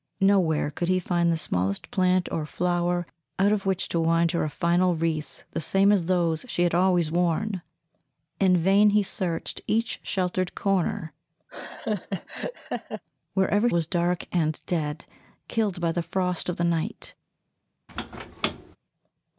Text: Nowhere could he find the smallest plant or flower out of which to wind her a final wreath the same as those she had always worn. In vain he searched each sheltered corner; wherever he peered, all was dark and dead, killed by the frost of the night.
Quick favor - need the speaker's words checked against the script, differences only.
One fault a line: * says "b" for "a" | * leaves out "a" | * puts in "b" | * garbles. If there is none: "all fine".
* leaves out "he peered all"